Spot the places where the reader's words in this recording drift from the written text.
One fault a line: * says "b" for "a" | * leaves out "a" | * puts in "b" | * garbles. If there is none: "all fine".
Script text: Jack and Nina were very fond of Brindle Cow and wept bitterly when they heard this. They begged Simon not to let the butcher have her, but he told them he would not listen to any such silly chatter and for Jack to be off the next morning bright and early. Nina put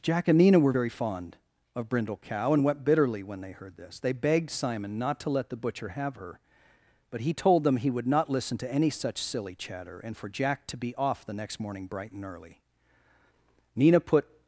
all fine